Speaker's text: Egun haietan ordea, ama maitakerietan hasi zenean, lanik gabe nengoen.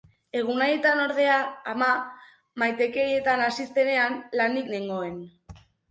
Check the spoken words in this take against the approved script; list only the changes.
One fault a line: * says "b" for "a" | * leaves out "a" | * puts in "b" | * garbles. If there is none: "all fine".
* leaves out "gabe"